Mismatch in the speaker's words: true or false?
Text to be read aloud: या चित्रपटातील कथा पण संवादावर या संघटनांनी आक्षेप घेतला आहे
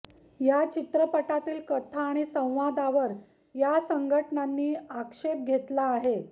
true